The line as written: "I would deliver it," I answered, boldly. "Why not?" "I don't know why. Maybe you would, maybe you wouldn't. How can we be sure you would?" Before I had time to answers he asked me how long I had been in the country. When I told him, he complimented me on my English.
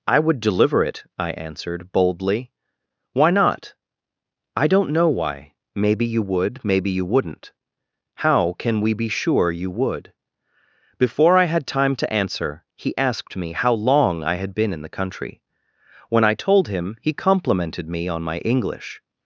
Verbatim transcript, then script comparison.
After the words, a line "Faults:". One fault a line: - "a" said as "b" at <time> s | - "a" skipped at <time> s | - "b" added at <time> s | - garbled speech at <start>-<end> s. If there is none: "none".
"I would deliver it," I answered, boldly. "Why not?" "I don't know why. Maybe you would, maybe you wouldn't. How can we be sure you would?" Before I had time to answer he asked me how long I had been in the country. When I told him, he complimented me on my English.
Faults:
- "answers" said as "answer" at 12.1 s